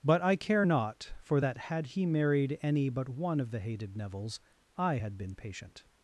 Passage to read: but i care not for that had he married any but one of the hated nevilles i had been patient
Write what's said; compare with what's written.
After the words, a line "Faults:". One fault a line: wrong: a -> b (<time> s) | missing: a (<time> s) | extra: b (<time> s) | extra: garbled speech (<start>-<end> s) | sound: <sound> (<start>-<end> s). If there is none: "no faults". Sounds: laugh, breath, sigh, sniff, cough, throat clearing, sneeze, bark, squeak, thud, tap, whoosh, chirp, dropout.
but i care not for that had he married any but one of the hated nevilles i had been patient
Faults:
no faults